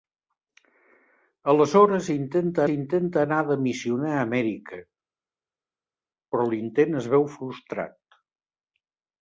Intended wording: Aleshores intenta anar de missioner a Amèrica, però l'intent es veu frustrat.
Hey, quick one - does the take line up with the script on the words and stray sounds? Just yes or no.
no